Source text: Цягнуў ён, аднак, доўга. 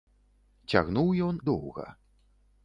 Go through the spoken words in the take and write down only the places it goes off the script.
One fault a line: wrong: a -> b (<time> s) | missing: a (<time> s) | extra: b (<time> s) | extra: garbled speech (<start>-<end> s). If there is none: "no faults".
missing: аднак (1.4 s)